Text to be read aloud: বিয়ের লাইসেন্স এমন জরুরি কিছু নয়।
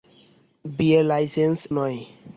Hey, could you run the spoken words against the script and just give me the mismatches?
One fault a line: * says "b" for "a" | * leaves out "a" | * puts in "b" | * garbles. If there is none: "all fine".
* leaves out "এমন জরুরি কিছু"